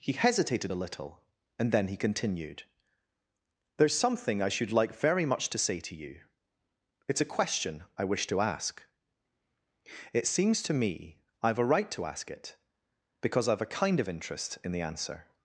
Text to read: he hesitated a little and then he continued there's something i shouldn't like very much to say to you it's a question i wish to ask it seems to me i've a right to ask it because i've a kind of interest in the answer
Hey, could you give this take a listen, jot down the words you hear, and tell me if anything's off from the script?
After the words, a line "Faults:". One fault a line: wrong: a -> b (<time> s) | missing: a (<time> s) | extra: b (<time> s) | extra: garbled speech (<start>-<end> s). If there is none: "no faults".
he hesitated a little and then he continued there's something i should like very much to say to you it's a question i wish to ask it seems to me i've a right to ask it because i've a kind of interest in the answer
Faults:
wrong: shouldn't -> should (4.5 s)